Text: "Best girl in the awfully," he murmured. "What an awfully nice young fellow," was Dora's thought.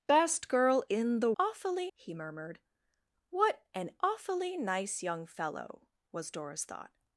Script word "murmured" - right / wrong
right